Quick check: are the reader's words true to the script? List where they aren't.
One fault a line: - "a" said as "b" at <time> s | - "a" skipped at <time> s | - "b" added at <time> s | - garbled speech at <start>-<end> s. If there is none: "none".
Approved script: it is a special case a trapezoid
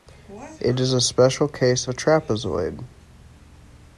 none